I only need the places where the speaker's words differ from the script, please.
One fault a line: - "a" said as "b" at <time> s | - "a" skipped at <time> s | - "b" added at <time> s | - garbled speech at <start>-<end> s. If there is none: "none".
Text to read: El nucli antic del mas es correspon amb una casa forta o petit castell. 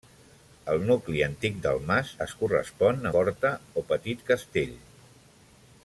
- "amb una casa" skipped at 3.1 s